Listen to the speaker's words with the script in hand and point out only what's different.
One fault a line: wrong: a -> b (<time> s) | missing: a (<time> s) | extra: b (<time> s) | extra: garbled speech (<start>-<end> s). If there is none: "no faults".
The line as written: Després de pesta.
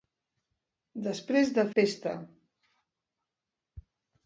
no faults